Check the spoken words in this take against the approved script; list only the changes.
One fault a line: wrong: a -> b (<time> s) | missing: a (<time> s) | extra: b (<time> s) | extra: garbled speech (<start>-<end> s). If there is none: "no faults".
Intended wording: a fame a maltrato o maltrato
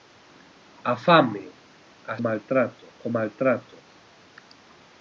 no faults